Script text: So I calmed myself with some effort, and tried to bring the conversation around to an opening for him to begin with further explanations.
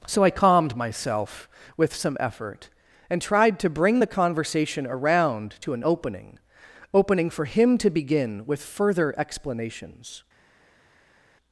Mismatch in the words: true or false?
true